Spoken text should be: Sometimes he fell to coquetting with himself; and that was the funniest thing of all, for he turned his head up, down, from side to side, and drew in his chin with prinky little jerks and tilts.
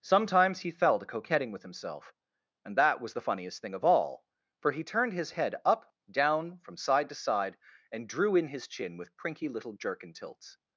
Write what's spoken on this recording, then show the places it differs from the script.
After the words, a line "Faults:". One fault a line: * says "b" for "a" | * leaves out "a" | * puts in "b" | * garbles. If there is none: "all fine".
Sometimes he fell to coquetting with himself; and that was the funniest thing of all, for he turned his head up, down, from side to side, and drew in his chin with prinky little jerk and tilts.
Faults:
* says "jerk" for "jerks"